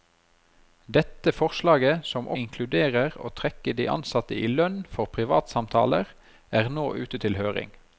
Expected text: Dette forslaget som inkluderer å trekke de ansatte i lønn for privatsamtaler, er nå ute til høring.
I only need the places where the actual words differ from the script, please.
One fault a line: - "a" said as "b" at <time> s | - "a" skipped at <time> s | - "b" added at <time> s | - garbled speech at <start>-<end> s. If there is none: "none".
none